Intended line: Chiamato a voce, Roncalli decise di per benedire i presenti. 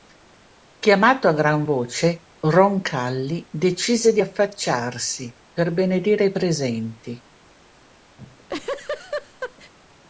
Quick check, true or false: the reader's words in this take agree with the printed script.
false